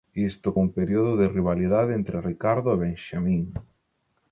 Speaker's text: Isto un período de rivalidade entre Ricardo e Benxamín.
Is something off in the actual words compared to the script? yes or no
no